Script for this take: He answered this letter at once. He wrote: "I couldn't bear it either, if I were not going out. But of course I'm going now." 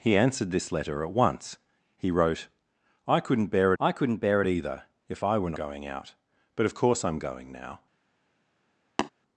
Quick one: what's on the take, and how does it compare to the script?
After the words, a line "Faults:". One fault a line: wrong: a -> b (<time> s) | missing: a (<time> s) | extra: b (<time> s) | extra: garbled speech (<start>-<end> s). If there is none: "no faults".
He answered this letter at once. He wrote: "I couldn't bear I couldn't bear it either, if I were going out. But of course I'm going now."
Faults:
extra: I couldn't bear (3.8 s)
missing: not (5.5 s)